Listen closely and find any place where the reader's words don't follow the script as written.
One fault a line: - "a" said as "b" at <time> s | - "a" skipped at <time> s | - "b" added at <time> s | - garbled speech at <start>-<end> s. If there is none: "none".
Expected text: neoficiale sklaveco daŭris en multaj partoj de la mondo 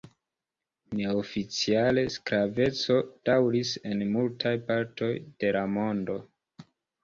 none